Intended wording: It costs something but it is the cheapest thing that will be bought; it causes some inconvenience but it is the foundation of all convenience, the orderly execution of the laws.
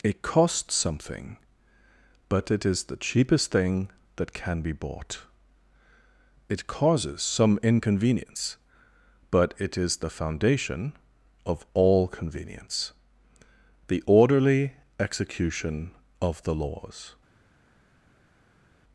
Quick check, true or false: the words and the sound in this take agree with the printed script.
false